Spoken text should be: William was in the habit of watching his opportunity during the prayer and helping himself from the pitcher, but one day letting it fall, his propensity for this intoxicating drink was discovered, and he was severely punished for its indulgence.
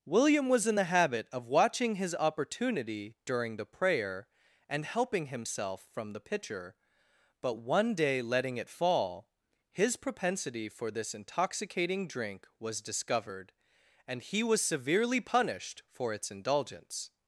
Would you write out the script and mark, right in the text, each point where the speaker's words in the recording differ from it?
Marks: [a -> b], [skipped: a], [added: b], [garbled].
William was in the habit of watching his opportunity during the prayer and helping himself from the pitcher, but one day letting it fall, his propensity for this intoxicating drink was discovered, and he was severely punished for its indulgence.